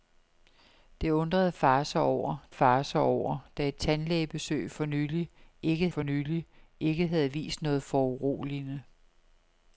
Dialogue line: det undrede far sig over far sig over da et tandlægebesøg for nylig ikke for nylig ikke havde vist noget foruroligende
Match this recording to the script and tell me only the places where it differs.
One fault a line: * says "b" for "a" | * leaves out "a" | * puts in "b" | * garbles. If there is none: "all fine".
all fine